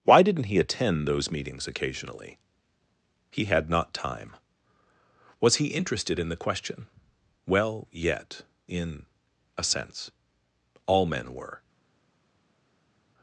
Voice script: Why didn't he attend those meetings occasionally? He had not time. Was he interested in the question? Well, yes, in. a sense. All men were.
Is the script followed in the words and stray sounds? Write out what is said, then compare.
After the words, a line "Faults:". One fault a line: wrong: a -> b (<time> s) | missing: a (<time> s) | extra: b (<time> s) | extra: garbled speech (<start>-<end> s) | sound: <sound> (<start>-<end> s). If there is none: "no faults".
Why didn't he attend those meetings occasionally? He had not time. Was he interested in the question? Well, yet, in. a sense. All men were.
Faults:
wrong: yes -> yet (7.9 s)